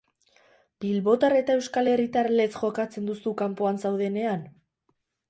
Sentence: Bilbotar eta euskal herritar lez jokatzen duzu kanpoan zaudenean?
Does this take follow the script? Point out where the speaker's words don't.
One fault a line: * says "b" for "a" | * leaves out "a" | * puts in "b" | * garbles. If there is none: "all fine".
all fine